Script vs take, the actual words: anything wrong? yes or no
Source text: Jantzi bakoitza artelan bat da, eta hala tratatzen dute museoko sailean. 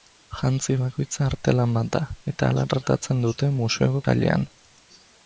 no